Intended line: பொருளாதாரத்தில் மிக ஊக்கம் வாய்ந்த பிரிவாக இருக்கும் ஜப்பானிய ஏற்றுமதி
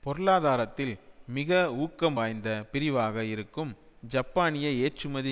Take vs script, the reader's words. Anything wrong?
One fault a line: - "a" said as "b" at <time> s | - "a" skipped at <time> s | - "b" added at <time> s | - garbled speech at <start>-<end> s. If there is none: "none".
none